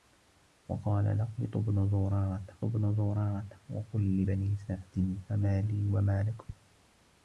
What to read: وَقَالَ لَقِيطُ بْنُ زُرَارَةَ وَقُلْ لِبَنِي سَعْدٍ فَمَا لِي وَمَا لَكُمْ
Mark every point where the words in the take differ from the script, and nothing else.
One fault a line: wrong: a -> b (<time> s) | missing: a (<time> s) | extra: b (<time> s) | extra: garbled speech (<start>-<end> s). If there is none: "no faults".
extra: بْنُ زُرَارَةَ (2.6 s)